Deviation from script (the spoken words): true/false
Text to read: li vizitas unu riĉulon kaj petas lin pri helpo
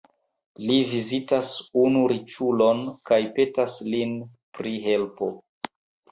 false